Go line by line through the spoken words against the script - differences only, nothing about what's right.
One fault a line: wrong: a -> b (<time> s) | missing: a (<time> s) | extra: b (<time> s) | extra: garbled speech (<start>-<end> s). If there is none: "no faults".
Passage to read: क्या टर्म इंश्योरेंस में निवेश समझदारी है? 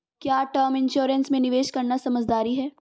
extra: करना (1.7 s)